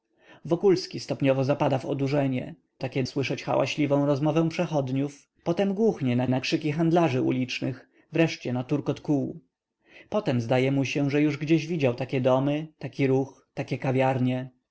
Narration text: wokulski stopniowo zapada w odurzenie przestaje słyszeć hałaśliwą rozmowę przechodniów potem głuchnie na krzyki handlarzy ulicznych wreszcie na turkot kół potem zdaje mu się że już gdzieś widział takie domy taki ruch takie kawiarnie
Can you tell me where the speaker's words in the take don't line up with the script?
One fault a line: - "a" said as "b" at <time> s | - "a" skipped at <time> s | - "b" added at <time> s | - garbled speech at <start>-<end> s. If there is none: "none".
- "przestaje" said as "takie" at 2.8 s
- "na" added at 6.3 s